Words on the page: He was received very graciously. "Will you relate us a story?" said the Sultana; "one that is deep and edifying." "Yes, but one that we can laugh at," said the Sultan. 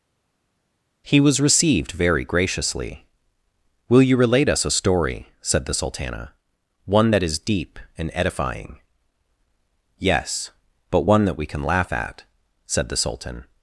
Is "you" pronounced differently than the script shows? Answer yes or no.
no